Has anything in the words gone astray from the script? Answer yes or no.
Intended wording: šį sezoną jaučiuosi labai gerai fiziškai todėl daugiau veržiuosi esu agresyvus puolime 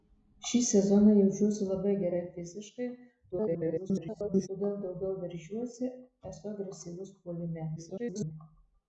yes